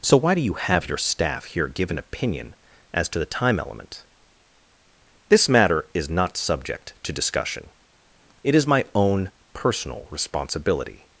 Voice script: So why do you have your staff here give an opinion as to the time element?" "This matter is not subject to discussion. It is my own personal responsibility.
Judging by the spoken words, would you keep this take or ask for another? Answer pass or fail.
pass